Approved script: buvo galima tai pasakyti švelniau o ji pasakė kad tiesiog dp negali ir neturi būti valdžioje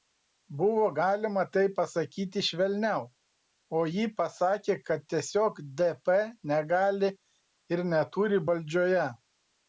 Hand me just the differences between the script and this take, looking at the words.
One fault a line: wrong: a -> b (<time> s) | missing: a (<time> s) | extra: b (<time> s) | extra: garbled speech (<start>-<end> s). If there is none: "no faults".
missing: būti (8.4 s)